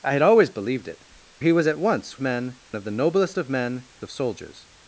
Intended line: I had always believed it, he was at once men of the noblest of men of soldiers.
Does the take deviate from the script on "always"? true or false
false